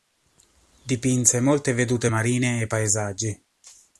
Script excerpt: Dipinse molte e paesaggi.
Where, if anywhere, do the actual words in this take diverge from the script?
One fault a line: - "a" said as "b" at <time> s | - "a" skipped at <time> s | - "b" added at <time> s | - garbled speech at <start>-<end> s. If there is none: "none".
- "vedute marine" added at 1.7 s